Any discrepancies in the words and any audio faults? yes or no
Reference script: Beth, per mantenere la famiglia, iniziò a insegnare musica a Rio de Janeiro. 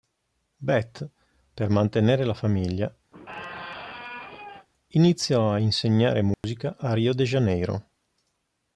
yes